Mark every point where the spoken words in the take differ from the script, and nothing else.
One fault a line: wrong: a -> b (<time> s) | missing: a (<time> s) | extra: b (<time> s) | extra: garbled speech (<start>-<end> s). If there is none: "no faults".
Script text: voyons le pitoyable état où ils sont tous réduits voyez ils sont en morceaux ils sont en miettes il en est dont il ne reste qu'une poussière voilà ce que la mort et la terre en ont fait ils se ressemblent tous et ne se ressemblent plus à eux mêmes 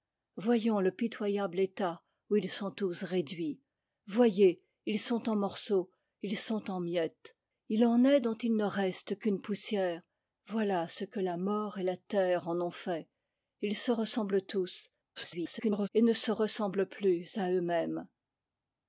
extra: garbled speech (15.2-15.9 s)